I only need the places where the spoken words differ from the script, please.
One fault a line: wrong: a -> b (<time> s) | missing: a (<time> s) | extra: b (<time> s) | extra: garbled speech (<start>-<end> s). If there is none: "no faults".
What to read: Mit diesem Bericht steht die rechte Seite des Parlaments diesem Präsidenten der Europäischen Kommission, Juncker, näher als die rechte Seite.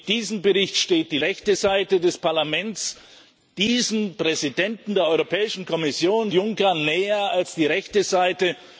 no faults